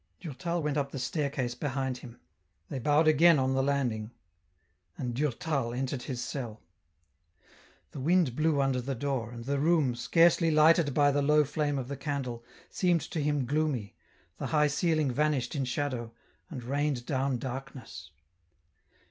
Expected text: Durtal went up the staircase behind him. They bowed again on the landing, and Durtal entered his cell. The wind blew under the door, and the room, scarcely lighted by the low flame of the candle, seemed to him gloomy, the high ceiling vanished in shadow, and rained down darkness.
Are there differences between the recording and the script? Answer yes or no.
no